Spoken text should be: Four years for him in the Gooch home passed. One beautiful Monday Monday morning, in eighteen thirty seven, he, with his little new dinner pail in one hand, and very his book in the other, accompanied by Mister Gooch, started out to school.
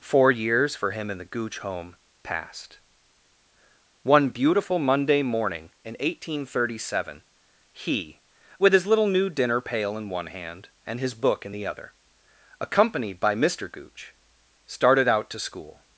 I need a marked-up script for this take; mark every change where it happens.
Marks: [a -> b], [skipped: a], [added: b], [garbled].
Four years for him in the Gooch home passed. One beautiful Monday [skipped: Monday] morning, in eighteen thirty seven, he, with his little new dinner pail in one hand, and [skipped: very] his book in the other, accompanied by Mister Gooch, started out to school.